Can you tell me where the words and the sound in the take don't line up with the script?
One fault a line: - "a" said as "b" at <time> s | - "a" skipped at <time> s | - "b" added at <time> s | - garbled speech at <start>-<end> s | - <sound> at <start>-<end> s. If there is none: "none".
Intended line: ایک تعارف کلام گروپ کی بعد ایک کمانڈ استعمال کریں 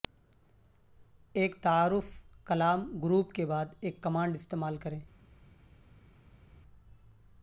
- "کی" said as "کے" at 3.3 s